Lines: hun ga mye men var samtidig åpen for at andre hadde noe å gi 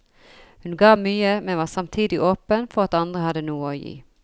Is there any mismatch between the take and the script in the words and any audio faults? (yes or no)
no